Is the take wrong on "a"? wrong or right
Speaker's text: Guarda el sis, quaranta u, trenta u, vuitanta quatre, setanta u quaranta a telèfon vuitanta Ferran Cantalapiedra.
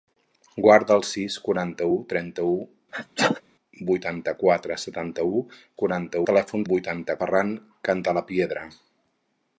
right